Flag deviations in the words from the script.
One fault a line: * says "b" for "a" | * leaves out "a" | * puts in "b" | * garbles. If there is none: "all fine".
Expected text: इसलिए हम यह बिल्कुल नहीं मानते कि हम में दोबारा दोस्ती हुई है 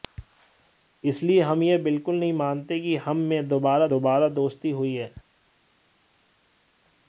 * puts in "दोबारा"